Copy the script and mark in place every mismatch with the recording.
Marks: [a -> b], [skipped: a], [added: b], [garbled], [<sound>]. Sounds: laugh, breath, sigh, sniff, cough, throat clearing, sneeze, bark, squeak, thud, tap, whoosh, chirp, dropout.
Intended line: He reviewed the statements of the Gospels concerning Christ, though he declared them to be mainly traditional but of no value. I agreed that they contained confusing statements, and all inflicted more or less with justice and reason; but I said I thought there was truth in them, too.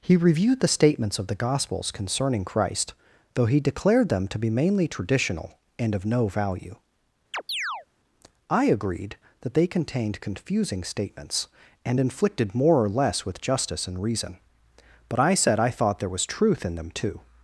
He reviewed the statements of the Gospels concerning Christ, though he declared them to be mainly traditional [but -> and] of no value. [chirp] I agreed that they contained confusing statements, and [skipped: all] inflicted more or less with justice and reason; but I said I thought there was truth in them, too.